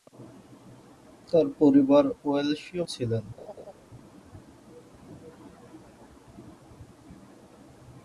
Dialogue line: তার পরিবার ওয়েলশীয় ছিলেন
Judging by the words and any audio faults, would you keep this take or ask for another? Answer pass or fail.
fail